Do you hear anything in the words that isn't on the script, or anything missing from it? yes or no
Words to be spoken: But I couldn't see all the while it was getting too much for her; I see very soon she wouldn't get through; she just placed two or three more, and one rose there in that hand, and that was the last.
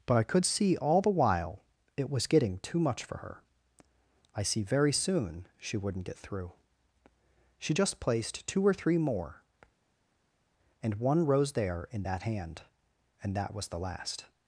yes